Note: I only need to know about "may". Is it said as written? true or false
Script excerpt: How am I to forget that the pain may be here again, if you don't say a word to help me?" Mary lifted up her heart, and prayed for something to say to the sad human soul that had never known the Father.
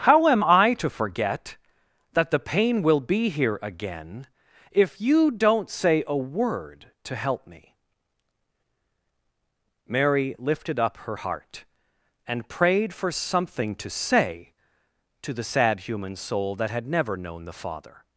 false